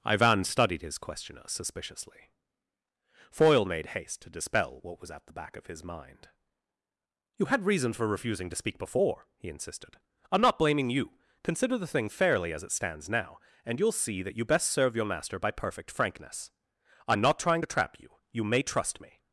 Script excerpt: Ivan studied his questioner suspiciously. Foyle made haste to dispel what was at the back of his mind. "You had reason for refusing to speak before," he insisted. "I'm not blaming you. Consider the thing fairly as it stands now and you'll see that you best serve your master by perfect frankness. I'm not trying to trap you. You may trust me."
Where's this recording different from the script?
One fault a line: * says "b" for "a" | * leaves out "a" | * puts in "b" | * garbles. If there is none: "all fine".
all fine